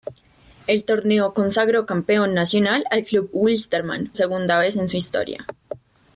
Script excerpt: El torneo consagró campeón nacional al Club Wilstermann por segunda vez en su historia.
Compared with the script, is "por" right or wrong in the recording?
wrong